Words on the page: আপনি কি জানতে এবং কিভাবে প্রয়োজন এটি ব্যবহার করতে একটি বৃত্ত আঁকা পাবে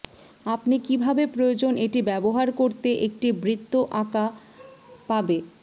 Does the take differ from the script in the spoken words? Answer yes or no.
yes